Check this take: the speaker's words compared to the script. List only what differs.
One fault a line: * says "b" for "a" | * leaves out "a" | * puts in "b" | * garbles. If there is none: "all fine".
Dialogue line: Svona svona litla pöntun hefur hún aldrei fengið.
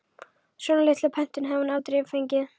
* leaves out "svona"
* says "hafði" for "hefur"